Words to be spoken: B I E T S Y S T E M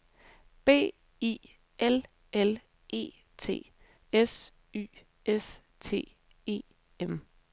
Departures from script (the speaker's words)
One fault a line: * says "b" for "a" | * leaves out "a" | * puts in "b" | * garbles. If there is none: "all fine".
* puts in "L L"